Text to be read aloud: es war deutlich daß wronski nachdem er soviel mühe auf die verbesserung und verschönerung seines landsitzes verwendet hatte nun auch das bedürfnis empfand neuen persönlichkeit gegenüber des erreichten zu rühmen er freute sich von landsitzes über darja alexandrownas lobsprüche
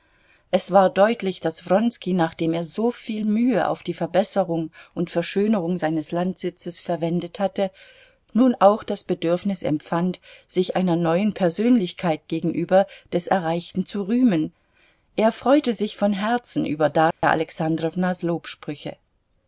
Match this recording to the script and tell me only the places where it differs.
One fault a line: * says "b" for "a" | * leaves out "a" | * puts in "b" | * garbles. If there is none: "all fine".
* puts in "sich einer"
* says "herzen" for "landsitzes"